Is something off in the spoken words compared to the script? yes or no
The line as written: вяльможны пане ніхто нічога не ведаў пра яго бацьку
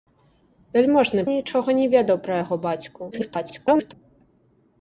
yes